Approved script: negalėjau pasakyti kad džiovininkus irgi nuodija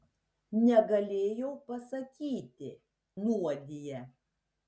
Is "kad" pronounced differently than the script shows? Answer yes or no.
yes